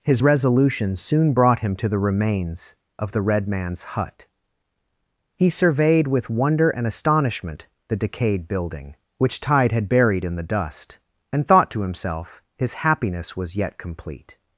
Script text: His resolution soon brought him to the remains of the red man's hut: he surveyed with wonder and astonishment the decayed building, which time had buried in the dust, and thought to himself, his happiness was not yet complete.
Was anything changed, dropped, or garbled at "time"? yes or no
yes